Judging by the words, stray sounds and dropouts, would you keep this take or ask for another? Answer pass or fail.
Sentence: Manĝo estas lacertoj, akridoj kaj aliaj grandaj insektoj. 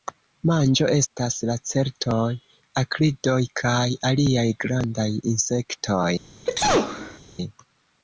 fail